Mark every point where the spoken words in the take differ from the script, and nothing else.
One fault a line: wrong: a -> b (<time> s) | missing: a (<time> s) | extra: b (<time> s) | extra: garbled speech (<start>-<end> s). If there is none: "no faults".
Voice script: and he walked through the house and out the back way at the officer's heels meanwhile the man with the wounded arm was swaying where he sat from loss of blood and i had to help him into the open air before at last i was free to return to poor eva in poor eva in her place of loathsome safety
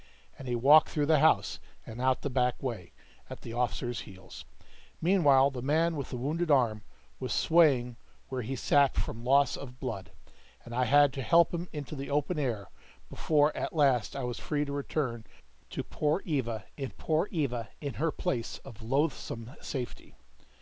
no faults